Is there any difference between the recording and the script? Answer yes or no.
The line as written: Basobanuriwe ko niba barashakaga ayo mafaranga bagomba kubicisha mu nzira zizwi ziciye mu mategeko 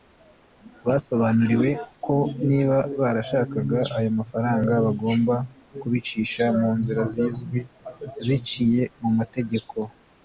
no